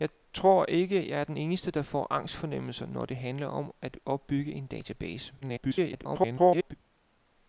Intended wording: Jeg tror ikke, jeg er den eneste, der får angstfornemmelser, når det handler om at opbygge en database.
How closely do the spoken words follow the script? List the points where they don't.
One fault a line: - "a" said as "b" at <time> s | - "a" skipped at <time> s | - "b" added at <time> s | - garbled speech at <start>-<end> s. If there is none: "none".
- garbled speech at 5.4-6.7 s